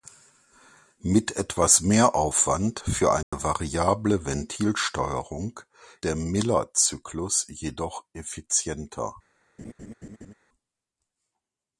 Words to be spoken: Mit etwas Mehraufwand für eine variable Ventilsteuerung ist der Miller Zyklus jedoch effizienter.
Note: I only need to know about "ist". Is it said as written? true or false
false